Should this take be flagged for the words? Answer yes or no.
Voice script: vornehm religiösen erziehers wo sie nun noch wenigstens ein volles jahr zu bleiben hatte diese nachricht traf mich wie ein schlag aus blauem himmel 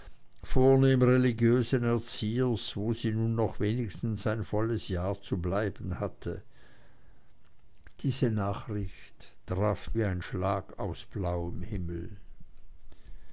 yes